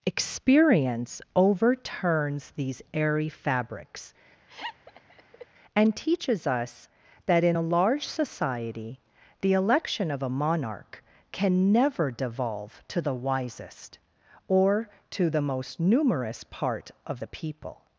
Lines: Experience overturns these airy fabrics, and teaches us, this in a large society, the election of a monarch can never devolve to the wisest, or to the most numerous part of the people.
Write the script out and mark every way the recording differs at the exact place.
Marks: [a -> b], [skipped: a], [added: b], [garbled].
Experience overturns these airy fabrics, and teaches us, [this -> that] in a large society, the election of a monarch can never devolve to the wisest, or to the most numerous part of the people.